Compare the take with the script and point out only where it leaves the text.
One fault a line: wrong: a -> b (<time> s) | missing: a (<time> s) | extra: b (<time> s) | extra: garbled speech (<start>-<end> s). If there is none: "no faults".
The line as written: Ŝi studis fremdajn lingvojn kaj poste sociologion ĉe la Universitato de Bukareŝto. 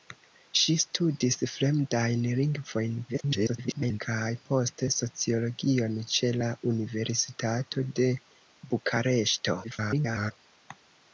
extra: garbled speech (3.1-4.0 s)
extra: garbled speech (9.6-10.3 s)